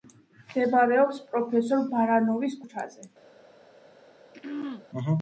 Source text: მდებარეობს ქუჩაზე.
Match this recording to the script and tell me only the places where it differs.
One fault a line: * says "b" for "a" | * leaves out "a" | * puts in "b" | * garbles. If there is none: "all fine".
* puts in "პროფესორ ბარანოვის"